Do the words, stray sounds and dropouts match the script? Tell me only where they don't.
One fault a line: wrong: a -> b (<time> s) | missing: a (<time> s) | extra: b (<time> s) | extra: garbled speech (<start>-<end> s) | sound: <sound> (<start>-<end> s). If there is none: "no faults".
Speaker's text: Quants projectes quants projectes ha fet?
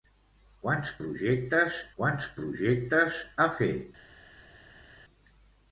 no faults